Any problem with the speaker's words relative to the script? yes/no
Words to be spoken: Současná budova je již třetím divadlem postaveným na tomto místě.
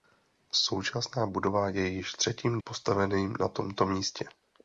yes